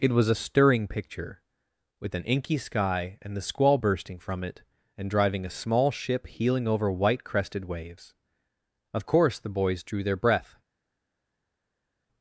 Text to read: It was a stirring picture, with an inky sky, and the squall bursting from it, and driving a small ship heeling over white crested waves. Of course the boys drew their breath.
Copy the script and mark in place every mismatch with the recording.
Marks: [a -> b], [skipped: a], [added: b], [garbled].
It was a stirring picture, with an inky sky, and the squall bursting from it, and driving a small ship heeling over white crested waves. Of course the boys drew their breath.